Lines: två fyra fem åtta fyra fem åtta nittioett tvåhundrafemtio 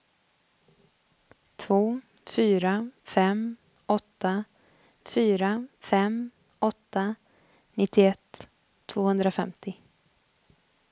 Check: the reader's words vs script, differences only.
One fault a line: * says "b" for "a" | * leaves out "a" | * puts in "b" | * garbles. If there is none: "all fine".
all fine